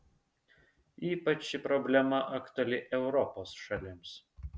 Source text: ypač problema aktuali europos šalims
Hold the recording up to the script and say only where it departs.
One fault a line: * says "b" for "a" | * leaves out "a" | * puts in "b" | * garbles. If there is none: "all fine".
* puts in "ši"